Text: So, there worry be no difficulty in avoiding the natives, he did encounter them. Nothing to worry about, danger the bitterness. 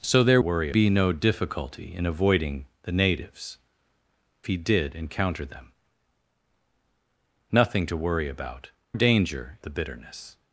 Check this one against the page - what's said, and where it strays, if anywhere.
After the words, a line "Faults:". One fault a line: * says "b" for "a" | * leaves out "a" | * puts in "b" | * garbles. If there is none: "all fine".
So, there worry be no difficulty in avoiding the natives, he did encounter them. Nothing to worry about, danger the bitterness.
Faults:
all fine